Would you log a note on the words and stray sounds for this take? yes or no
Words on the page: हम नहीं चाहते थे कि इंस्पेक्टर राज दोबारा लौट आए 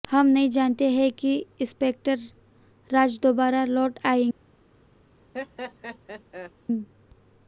yes